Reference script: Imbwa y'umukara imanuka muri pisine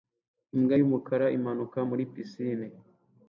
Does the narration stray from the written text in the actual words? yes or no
no